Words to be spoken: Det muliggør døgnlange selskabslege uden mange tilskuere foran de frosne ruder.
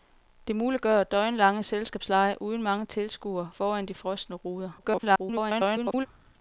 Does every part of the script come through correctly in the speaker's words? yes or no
no